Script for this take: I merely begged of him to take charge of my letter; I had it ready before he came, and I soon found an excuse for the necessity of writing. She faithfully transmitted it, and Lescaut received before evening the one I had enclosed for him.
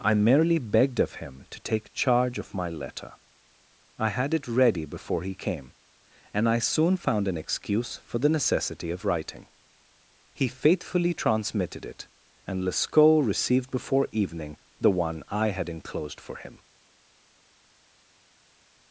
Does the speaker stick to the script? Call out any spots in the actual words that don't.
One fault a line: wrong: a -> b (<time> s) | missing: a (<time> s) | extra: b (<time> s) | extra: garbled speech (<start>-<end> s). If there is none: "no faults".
wrong: She -> He (10.3 s)